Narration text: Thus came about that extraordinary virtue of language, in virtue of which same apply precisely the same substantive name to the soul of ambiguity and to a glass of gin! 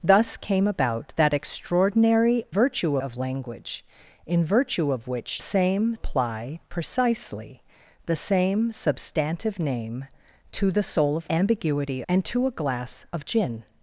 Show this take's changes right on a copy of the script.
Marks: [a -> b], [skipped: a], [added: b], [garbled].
Thus came about that extraordinary virtue of language, in virtue of which same apply precisely the same substantive name to the soul of ambiguity and to a glass of gin!